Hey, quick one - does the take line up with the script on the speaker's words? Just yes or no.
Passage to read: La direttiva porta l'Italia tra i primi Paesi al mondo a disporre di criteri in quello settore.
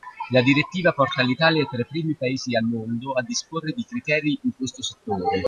no